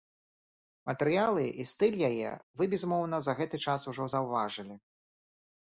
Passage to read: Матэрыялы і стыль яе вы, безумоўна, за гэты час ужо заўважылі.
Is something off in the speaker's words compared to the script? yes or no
no